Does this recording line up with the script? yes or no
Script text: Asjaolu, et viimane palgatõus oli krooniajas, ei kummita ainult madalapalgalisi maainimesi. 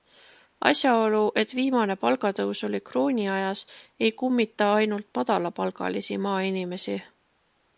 yes